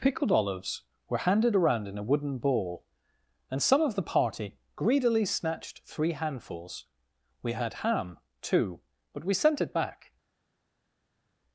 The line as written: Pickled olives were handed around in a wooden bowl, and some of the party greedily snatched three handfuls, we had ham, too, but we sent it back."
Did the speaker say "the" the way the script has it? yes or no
yes